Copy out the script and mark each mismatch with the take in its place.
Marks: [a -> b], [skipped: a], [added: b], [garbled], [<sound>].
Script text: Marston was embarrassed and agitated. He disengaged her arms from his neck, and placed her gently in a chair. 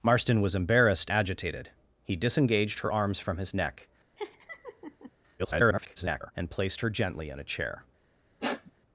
Marston was embarrassed [skipped: and] agitated. He disengaged her arms from his neck, [laugh] [garbled] and placed her gently in a chair. [sniff]